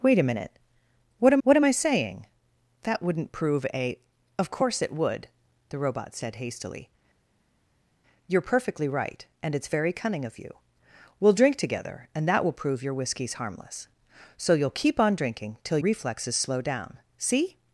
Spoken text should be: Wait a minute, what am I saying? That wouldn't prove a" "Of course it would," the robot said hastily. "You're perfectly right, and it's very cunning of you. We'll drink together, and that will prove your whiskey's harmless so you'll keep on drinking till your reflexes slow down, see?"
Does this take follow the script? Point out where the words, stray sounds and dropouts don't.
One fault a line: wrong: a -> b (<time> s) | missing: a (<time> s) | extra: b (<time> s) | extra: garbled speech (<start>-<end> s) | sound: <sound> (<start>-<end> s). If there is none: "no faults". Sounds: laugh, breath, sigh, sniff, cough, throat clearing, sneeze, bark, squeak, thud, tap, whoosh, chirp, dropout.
extra: what am (1.4 s)
missing: your (15.8 s)